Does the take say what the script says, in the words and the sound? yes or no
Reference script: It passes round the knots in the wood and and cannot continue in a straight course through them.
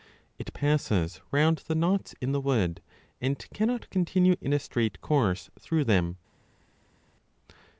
no